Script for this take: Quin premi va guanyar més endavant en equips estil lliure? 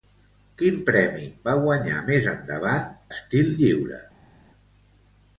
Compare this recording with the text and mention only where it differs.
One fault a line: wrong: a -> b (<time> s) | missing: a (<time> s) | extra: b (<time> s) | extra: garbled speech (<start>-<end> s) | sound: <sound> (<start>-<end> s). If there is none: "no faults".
missing: en equips (2.9 s)